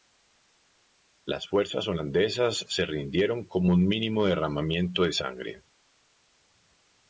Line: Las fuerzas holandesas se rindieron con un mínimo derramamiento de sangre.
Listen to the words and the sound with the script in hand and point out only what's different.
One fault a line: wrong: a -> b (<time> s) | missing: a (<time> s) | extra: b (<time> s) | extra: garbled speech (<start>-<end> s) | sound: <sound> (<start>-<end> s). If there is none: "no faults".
no faults